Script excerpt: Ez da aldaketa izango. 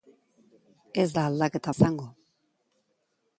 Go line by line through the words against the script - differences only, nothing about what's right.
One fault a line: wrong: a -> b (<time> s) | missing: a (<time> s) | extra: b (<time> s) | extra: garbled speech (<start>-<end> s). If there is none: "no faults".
no faults